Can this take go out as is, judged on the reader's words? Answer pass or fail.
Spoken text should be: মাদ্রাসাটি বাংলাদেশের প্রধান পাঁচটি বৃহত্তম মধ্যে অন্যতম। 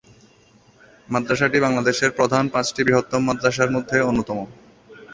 fail